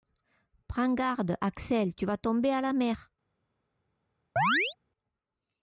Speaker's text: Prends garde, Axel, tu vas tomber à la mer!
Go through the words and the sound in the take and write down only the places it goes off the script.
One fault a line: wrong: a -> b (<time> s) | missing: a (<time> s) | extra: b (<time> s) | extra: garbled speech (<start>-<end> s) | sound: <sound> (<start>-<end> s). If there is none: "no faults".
sound: chirp (4.4-4.8 s)